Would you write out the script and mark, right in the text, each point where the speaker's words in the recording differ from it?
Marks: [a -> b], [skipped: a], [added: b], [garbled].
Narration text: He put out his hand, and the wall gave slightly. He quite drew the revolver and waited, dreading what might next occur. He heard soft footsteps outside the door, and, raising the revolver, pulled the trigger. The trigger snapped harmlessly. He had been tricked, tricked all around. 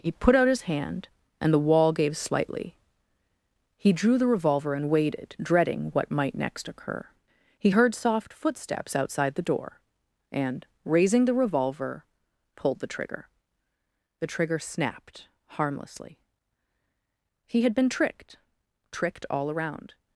He put out his hand, and the wall gave slightly. He [skipped: quite] drew the revolver and waited, dreading what might next occur. He heard soft footsteps outside the door, and, raising the revolver, pulled the trigger. The trigger snapped harmlessly. He had been tricked, tricked all around.